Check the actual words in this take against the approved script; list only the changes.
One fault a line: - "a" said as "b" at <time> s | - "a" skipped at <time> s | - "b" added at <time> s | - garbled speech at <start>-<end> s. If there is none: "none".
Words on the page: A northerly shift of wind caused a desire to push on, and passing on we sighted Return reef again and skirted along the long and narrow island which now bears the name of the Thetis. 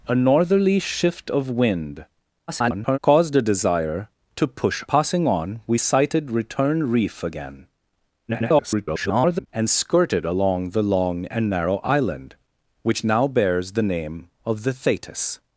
- garbled speech at 2.5-3.0 s
- "on and" skipped at 4.8 s
- garbled speech at 8.3-9.5 s